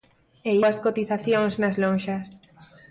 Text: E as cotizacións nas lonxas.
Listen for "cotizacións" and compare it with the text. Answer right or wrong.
right